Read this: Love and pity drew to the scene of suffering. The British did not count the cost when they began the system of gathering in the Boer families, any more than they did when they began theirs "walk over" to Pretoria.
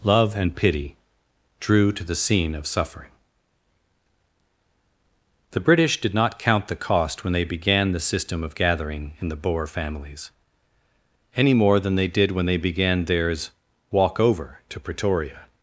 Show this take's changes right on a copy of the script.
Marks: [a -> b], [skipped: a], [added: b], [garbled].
Love and pity drew to the scene of suffering. The British did not count the cost when they began the system of gathering in the Boer families, any more than they did when they began theirs "walk over" to Pretoria.